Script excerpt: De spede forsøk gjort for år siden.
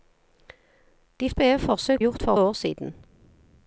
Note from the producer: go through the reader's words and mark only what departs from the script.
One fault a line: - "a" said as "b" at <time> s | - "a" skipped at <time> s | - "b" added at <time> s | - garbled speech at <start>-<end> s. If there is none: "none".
none